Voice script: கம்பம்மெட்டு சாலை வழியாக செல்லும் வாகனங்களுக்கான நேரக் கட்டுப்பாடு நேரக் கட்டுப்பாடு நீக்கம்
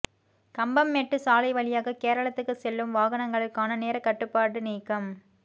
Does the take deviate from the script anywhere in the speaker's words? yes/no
yes